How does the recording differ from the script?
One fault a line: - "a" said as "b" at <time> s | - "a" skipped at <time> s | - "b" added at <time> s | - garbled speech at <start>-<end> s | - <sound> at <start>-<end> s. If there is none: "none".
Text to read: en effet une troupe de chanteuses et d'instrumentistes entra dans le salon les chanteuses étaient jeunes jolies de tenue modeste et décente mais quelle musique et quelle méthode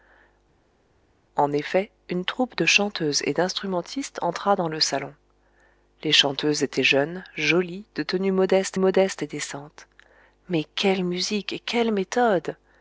- "modeste" added at 8.8 s